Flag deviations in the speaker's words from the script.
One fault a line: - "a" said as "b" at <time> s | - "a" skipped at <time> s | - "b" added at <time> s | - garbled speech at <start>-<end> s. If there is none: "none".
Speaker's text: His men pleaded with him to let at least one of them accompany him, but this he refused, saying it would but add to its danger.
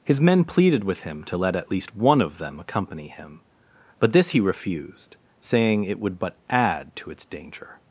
none